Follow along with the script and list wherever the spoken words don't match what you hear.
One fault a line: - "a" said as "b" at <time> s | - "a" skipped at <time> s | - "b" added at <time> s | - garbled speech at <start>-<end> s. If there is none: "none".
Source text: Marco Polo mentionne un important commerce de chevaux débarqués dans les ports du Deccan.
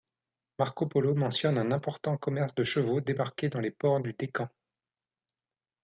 none